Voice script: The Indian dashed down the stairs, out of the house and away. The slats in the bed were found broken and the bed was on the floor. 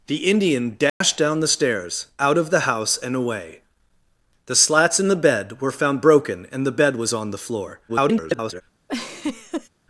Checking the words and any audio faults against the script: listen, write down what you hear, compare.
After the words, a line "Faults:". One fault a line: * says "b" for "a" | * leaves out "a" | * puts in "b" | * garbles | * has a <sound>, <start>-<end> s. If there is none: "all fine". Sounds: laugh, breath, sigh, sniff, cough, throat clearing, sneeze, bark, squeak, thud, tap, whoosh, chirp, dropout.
The Indian dashed down the stairs, out of the house and away. The slats in the bed were found broken and the bed was on the floor. [garbled]
Faults:
* has a dropout, 0.9-1.0 s
* garbles
* has a laugh, 8.9-9.7 s